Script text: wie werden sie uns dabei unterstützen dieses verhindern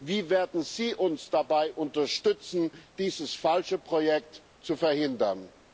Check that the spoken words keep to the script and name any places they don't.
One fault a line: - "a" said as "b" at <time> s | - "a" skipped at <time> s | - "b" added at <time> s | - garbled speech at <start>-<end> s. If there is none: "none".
- "falsche projekt zu" added at 3.4 s